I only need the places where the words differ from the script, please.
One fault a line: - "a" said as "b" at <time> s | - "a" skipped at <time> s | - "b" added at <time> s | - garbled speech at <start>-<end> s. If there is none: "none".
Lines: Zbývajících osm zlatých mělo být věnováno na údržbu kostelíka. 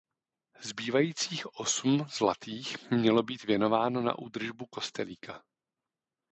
none